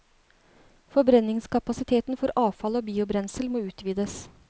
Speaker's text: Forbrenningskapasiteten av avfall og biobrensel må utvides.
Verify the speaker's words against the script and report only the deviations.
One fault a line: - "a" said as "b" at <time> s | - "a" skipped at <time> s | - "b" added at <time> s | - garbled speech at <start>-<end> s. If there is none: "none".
- "av" said as "for" at 2.2 s